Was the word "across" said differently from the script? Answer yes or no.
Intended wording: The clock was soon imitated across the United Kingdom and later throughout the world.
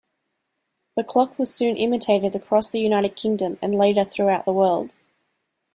no